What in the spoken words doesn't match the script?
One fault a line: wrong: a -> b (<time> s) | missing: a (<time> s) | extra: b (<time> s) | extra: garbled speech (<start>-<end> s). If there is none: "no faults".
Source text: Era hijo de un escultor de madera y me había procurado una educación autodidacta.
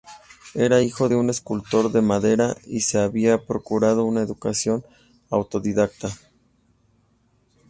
wrong: me -> se (2.8 s)